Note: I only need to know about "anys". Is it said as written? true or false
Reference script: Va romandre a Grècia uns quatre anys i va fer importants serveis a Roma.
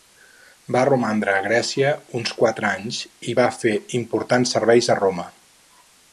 true